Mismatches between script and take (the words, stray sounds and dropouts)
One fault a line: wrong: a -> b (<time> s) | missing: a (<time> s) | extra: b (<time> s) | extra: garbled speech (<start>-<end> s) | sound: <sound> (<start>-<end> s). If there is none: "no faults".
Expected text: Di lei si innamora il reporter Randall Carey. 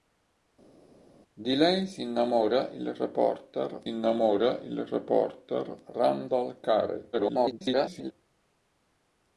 extra: innamora il reporter (3.9 s)
extra: garbled speech (7.1-8.1 s)